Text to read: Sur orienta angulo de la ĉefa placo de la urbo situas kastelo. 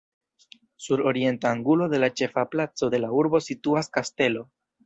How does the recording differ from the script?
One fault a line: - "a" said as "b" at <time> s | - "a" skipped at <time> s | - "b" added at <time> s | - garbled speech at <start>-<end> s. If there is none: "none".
none